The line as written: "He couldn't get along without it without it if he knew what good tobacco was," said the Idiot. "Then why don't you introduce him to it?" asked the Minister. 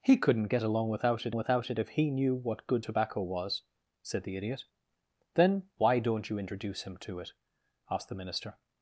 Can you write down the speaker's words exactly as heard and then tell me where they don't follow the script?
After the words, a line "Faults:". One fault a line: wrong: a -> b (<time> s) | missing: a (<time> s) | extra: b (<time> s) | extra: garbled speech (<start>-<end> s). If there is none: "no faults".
"He couldn't get along without it without it if he knew what good tobacco was," said the Idiot. "Then why don't you introduce him to it?" asked the Minister.
Faults:
no faults